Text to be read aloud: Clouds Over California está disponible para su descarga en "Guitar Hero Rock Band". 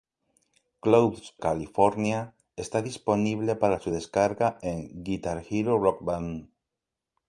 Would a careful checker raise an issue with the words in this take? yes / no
yes